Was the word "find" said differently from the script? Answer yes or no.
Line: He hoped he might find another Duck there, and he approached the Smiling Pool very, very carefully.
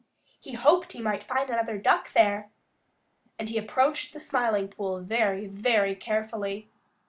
no